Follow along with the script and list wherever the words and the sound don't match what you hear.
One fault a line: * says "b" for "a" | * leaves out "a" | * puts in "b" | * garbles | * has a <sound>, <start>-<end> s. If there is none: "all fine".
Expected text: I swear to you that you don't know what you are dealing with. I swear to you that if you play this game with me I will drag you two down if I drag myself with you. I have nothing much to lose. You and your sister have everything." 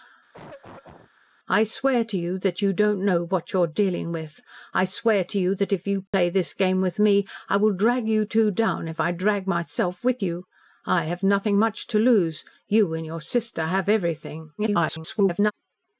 * has a cough, 0.3-1.1 s
* has a dropout, 6.1-6.1 s
* garbles